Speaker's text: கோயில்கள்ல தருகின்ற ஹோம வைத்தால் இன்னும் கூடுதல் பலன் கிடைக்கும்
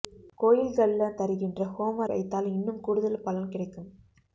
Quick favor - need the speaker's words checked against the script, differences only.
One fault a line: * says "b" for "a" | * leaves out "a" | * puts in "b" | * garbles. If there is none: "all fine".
all fine